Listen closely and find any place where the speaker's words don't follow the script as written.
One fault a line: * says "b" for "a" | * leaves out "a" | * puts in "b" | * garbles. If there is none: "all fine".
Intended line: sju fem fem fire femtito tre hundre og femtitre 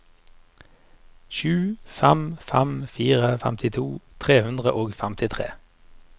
all fine